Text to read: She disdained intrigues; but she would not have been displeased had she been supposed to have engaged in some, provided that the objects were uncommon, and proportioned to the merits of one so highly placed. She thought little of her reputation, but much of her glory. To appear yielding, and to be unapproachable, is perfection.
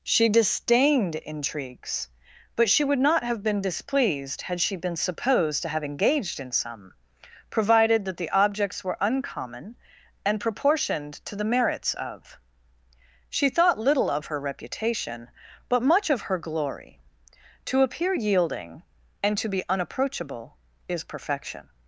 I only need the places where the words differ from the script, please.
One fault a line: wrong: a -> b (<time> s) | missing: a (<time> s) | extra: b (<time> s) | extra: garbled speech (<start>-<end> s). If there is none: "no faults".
missing: one so highly placed (12.4 s)